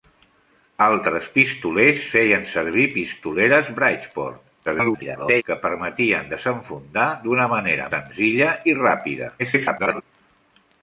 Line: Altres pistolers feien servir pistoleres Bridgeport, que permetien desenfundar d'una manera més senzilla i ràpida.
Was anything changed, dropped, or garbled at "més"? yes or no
yes